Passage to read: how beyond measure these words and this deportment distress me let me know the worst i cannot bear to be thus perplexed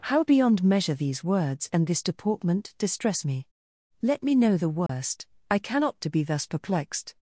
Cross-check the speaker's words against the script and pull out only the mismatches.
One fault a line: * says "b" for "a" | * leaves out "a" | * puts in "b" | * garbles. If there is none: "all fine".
* leaves out "bear"